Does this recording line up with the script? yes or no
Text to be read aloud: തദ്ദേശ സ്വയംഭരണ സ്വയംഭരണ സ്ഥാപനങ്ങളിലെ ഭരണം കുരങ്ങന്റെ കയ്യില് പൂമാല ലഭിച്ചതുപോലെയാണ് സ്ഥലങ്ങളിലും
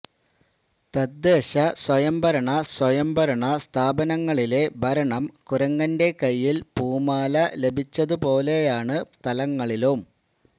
yes